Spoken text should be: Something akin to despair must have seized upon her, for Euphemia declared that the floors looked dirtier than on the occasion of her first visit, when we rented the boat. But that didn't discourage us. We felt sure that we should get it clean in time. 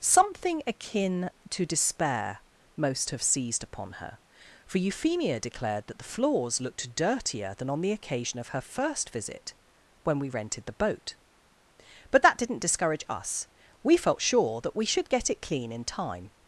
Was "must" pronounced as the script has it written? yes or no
no